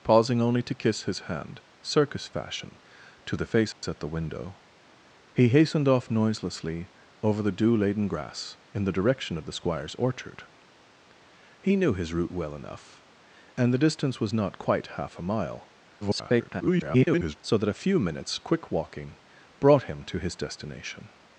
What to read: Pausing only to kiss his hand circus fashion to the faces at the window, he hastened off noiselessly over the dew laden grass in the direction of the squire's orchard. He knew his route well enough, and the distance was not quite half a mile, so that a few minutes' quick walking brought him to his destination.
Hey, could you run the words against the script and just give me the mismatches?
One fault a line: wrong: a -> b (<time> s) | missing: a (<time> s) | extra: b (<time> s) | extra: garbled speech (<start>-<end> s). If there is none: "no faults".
extra: garbled speech (16.0-17.4 s)